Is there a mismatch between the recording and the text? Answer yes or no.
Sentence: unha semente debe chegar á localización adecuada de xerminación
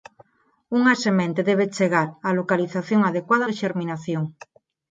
no